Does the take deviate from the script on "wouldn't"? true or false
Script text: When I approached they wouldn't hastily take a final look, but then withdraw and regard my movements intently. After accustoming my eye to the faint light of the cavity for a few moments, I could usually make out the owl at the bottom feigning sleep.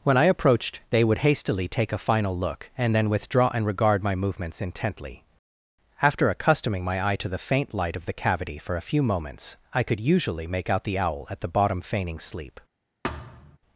true